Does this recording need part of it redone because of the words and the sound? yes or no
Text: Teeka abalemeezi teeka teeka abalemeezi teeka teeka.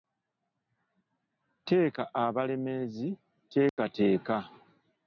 yes